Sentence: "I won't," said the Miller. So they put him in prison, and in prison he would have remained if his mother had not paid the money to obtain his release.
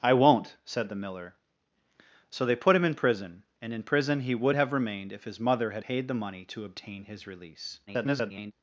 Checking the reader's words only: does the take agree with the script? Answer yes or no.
no